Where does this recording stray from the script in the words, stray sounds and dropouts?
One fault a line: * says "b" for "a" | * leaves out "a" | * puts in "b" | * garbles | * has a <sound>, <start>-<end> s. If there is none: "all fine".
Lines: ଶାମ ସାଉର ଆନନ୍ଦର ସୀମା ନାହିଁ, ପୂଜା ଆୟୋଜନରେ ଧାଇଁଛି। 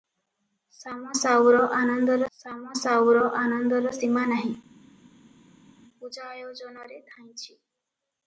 * puts in "ଶାମ ସାଉର ଆନନ୍ଦର"